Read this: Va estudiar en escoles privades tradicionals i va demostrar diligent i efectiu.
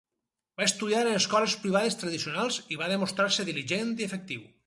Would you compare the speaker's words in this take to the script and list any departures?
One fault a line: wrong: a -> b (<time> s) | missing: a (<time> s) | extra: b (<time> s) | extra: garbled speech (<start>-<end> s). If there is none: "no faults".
extra: se (3.4 s)